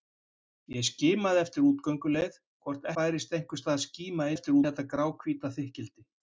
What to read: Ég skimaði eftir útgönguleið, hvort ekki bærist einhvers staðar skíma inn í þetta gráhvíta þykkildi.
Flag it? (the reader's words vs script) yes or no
yes